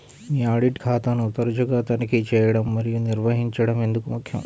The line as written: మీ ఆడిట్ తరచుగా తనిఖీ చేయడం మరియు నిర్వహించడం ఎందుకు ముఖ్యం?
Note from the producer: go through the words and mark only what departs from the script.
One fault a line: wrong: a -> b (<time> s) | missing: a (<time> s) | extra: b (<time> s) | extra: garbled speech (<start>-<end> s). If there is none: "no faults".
extra: ఖాతాను (0.8 s)